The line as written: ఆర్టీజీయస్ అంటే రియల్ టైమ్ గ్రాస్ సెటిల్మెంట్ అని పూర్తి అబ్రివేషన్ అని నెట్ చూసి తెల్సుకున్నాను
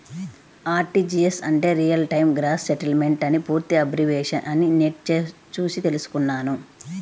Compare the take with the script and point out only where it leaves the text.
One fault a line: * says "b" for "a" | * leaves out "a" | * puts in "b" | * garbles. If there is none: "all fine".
all fine